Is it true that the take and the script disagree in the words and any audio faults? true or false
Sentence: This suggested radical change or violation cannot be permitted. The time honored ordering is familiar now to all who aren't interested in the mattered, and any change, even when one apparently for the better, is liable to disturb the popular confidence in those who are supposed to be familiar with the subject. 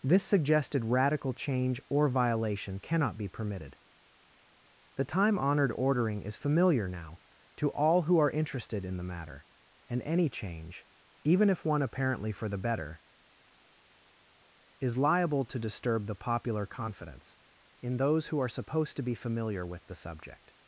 true